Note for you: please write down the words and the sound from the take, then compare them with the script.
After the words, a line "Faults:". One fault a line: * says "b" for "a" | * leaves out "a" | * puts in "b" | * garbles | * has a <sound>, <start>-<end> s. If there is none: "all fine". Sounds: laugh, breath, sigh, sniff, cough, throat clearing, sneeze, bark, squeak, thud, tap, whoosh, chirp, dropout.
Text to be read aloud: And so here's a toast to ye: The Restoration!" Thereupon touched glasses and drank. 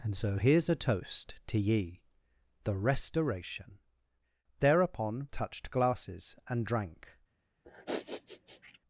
And so here's a toast to ye: The Restoration!" Thereupon touched glasses and drank.
Faults:
* has a sniff, 7.6-8.8 s